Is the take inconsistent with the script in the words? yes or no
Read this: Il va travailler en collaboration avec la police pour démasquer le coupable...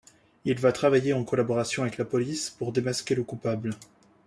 no